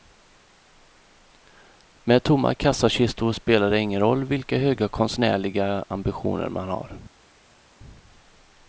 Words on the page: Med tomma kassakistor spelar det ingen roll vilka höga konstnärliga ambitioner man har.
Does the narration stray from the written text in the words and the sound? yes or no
no